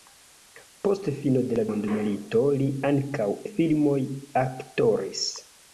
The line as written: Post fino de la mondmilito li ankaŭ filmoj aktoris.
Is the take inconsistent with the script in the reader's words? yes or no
no